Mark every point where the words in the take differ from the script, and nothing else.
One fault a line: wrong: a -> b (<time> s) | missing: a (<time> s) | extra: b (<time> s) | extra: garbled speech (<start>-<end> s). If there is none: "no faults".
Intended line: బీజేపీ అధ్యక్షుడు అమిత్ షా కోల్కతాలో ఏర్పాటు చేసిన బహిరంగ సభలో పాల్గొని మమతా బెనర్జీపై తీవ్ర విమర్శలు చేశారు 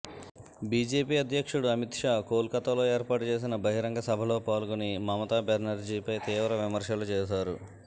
no faults